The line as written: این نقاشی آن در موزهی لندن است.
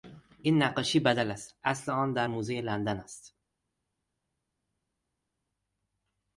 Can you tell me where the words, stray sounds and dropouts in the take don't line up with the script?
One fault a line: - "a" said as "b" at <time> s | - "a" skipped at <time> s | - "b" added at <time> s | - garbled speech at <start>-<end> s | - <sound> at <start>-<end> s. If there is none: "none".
- "بدل است اصل" added at 1.0 s